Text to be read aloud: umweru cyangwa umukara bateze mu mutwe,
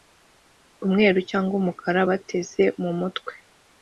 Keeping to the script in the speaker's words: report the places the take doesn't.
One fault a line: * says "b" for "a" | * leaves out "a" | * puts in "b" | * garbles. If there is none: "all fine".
all fine